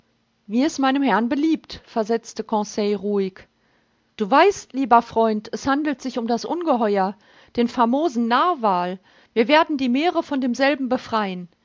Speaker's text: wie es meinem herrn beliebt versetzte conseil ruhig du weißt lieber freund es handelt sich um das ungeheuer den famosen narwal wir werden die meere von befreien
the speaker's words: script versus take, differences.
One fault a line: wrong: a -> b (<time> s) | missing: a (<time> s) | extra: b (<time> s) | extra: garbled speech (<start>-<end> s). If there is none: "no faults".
extra: demselben (10.4 s)